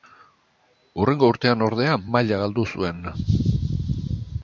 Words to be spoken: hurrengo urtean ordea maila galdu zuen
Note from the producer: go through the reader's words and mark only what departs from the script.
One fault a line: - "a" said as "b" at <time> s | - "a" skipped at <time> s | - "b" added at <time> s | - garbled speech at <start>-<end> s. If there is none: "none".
none